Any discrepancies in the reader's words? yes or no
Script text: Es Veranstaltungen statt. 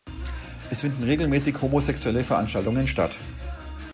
yes